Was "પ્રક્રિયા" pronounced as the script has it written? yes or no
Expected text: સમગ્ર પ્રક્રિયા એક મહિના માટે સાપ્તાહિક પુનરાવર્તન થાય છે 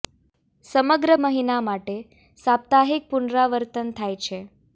no